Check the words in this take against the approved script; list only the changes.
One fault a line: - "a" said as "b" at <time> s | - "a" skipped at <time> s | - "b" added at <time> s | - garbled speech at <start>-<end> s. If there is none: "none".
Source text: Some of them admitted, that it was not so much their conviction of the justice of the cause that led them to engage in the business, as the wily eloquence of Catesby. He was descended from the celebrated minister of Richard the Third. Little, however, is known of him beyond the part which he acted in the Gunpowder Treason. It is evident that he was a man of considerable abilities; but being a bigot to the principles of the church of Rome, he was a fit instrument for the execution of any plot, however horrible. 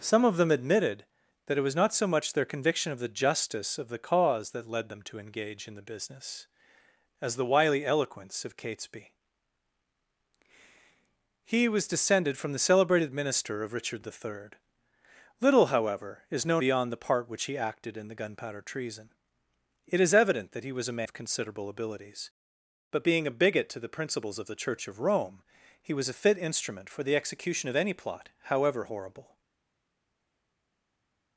- "of him" skipped at 16.6 s
- "man" skipped at 21.0 s